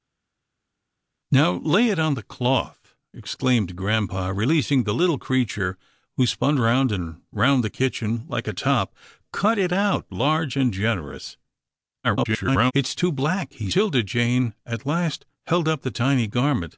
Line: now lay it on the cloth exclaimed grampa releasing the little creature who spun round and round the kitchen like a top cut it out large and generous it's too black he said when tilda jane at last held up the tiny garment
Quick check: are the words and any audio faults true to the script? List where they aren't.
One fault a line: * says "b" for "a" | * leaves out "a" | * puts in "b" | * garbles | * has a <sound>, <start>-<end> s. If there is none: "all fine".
* garbles
* leaves out "said when"